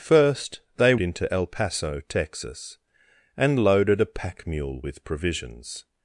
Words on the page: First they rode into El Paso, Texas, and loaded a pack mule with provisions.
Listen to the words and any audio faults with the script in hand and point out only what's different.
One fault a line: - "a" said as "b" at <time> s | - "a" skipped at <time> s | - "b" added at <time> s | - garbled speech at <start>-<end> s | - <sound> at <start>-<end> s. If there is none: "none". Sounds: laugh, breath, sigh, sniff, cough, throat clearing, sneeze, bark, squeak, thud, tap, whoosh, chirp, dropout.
- "rode" skipped at 0.9 s